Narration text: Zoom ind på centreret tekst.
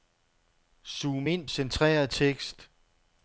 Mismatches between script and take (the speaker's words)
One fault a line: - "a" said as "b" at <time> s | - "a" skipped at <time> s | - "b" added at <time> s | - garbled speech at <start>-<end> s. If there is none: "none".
- "på" skipped at 1.5 s